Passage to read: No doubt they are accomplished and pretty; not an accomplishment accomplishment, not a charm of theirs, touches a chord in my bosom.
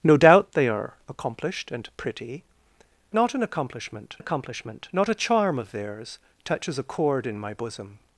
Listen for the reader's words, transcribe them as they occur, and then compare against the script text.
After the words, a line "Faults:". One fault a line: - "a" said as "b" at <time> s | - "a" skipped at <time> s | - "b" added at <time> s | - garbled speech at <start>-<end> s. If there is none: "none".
No doubt they are accomplished and pretty; not an accomplishment accomplishment, not a charm of theirs, touches a chord in my bosom.
Faults:
none